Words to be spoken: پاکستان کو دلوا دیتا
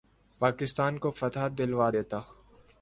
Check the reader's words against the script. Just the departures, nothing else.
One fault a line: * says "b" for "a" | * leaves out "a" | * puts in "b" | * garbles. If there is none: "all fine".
* puts in "فتح"